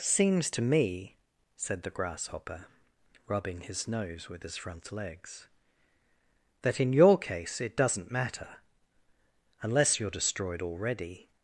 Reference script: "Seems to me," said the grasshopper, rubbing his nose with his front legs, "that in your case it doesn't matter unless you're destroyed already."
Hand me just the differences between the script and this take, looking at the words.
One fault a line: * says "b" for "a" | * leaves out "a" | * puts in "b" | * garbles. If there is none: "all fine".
all fine